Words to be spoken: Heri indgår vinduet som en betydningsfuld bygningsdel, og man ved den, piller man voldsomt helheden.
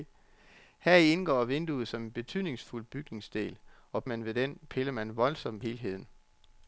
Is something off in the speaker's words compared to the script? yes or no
no